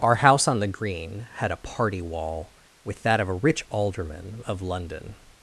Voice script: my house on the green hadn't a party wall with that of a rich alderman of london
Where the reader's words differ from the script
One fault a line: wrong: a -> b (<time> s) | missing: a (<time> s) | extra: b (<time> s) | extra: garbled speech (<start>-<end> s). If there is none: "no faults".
wrong: my -> our (0.0 s)
wrong: hadn't -> had (1.4 s)